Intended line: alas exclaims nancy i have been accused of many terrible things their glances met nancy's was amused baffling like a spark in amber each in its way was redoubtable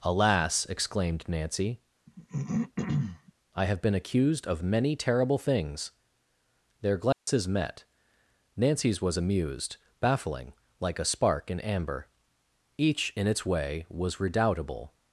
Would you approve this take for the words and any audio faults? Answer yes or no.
no